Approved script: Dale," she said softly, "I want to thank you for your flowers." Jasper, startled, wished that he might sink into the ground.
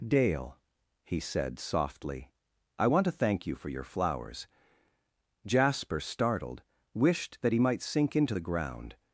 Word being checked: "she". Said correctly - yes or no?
no